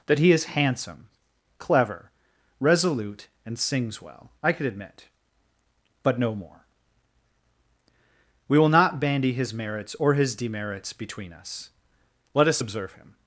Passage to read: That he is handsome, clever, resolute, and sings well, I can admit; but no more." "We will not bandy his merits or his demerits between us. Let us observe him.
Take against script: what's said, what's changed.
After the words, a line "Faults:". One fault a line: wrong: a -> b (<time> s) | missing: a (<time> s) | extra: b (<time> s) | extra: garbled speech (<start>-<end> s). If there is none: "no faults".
That he is handsome, clever, resolute, and sings well, I could admit; but no more." "We will not bandy his merits or his demerits between us. Let us observe him.
Faults:
wrong: can -> could (4.5 s)